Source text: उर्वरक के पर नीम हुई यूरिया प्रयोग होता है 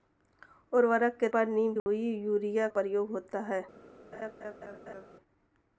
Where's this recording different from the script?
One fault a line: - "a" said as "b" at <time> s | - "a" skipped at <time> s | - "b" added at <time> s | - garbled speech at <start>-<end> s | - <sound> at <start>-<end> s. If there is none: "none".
- dropout at 1.8-1.9 s
- laugh at 4.1-5.1 s